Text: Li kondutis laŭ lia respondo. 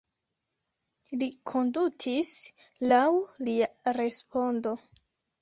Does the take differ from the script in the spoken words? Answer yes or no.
no